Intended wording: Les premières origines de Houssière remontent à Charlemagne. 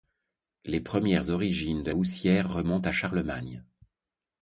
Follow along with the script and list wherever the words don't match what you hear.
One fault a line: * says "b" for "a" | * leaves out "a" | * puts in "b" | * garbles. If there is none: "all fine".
all fine